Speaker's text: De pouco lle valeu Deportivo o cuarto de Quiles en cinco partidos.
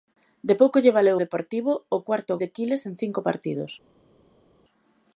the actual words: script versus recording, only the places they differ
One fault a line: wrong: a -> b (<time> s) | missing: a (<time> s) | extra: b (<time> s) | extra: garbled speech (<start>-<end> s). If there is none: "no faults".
no faults